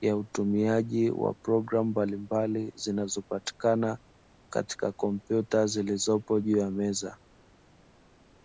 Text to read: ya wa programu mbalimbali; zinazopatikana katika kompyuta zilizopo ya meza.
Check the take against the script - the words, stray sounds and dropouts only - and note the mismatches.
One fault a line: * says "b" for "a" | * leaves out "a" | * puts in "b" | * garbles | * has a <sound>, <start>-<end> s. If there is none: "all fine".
* puts in "utumiaji"
* puts in "juu"